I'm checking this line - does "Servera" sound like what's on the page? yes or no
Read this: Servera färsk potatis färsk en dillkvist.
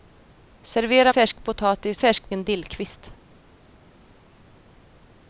yes